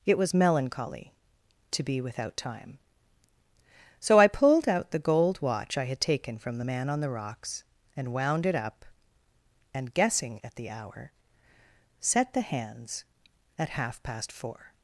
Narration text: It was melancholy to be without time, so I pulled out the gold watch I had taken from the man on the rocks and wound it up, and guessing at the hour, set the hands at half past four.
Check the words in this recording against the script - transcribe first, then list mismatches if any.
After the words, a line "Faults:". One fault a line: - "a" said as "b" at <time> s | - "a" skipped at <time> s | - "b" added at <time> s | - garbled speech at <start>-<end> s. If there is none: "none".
It was melancholy to be without time, so I pulled out the gold watch I had taken from the man on the rocks and wound it up, and guessing at the hour, set the hands at half past four.
Faults:
none